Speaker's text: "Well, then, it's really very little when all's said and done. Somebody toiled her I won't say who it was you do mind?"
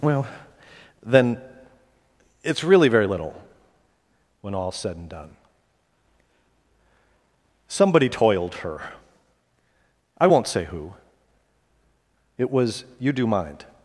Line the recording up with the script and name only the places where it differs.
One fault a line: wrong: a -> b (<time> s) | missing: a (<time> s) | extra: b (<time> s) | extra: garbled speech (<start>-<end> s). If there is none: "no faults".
no faults